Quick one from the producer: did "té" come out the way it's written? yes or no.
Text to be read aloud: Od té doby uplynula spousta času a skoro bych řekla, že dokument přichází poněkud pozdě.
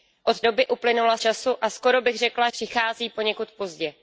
no